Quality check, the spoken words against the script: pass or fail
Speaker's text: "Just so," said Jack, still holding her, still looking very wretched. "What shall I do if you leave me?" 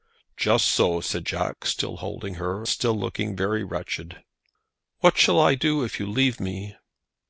pass